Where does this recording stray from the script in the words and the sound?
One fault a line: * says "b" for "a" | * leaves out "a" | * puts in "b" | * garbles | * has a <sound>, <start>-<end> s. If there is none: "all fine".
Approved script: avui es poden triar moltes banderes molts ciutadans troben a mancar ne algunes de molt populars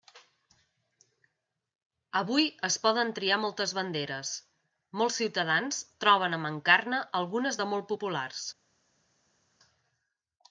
all fine